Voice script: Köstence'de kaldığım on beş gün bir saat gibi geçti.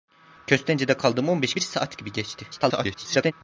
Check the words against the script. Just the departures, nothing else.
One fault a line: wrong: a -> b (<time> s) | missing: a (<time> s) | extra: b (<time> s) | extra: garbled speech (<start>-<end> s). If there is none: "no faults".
missing: gün (1.6 s)
extra: garbled speech (2.5-3.3 s)